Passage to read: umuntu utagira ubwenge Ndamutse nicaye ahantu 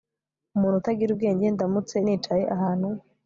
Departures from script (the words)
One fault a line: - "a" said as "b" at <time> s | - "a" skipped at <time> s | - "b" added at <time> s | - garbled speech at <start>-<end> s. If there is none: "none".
none